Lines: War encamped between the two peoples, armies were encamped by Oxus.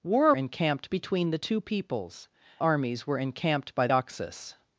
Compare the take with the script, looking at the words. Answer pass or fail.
pass